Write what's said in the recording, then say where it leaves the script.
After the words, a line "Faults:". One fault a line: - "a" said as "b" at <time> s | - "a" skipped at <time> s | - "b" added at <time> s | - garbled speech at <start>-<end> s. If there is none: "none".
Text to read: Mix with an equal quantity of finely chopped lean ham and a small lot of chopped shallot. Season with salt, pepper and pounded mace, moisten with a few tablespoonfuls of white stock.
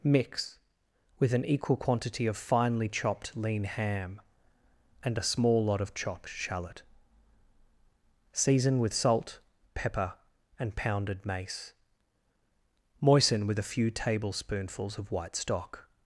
Mix with an equal quantity of finely chopped lean ham and a small lot of chopped shallot. Season with salt, pepper and pounded mace, moisten with a few tablespoonfuls of white stock.
Faults:
none